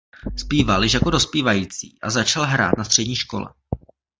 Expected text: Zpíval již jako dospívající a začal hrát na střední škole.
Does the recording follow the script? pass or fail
pass